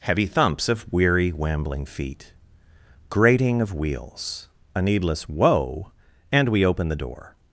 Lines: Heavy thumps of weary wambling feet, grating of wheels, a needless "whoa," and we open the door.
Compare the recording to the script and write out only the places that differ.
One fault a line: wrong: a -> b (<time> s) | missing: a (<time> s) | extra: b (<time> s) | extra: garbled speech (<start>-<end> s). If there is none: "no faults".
no faults